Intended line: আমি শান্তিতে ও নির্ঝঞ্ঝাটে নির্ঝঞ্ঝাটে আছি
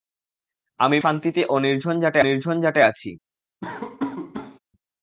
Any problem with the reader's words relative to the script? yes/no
no